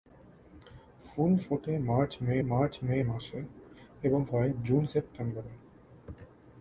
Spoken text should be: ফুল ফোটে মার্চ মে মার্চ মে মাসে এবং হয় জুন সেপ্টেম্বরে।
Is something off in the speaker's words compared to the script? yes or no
no